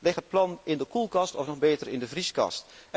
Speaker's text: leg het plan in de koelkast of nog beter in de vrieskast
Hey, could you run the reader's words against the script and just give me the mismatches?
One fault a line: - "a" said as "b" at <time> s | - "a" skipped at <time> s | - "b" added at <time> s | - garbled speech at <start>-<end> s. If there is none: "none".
none